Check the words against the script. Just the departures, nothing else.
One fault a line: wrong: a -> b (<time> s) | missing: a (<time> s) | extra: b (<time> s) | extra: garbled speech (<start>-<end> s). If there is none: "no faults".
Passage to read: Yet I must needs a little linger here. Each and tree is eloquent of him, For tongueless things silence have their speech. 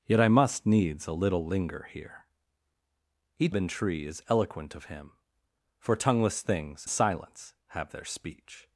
no faults